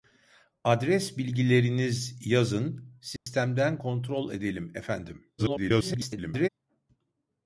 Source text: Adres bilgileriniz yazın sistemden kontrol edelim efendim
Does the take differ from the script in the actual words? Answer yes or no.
yes